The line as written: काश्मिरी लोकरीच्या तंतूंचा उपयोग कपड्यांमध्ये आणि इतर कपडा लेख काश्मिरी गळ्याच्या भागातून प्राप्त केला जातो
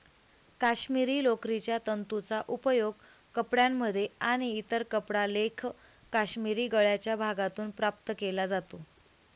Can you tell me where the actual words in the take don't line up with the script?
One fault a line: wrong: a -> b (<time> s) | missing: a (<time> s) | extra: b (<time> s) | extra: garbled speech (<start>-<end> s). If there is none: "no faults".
no faults